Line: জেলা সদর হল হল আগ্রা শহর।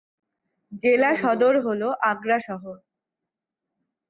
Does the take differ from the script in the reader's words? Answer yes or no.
yes